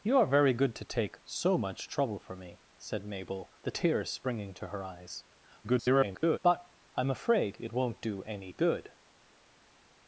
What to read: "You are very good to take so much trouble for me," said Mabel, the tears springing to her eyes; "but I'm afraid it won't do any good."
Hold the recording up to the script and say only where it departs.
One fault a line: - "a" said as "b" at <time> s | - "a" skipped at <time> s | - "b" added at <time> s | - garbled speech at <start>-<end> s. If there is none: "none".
- garbled speech at 5.6-6.4 s